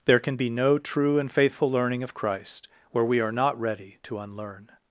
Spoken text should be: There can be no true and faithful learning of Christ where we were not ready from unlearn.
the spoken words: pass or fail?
fail